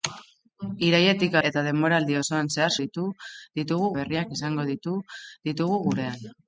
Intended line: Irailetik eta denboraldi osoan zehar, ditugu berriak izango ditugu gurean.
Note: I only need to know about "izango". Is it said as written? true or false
true